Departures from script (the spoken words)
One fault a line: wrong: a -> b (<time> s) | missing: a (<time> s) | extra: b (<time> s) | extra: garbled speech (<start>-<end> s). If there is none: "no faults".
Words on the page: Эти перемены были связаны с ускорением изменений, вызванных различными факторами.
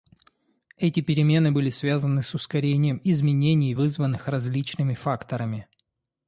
no faults